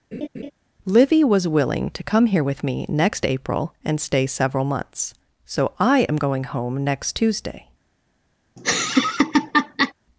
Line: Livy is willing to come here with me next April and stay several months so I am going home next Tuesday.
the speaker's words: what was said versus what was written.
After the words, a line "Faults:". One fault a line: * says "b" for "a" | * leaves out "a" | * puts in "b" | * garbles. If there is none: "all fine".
Livy was willing to come here with me next April and stay several months so I am going home next Tuesday.
Faults:
* says "was" for "is"